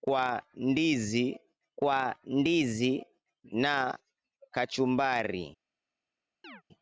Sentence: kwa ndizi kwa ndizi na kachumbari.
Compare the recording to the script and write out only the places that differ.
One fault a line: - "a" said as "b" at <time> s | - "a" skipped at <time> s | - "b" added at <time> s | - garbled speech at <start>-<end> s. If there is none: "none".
none